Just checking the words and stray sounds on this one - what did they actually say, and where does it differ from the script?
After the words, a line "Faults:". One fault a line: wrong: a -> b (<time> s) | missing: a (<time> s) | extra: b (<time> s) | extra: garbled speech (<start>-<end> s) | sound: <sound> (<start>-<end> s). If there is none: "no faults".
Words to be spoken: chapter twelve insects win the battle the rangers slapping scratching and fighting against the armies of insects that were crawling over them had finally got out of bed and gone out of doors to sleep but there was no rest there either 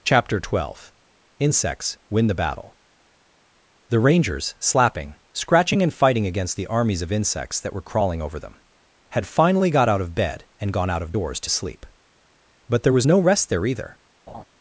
chapter twelve insects win the battle the rangers slapping scratching and fighting against the armies of insects that were crawling over them had finally got out of bed and gone out of doors to sleep but there was no rest there either
Faults:
sound: laugh (14.3-14.4 s)